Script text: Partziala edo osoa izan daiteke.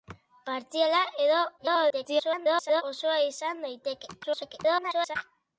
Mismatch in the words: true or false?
true